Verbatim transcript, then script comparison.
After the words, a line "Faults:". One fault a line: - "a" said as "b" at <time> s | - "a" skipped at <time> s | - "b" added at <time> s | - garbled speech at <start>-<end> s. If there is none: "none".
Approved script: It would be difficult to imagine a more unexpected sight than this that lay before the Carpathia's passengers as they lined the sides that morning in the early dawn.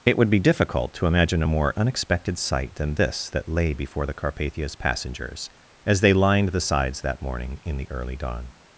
It would be difficult to imagine a more unexpected sight than this that lay before the Carpathia's passengers as they lined the sides that morning in the early dawn.
Faults:
none